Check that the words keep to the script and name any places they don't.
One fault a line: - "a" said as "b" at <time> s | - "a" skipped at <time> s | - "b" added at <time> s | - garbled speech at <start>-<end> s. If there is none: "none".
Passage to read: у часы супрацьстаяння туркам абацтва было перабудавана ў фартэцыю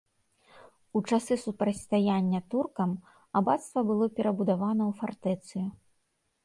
none